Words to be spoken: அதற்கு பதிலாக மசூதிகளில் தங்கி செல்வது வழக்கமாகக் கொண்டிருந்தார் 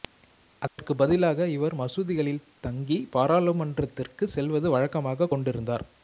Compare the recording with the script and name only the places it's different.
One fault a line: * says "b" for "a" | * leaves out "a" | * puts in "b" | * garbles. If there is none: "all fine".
* puts in "இவர்"
* puts in "பாராளுமன்றத்திற்கு"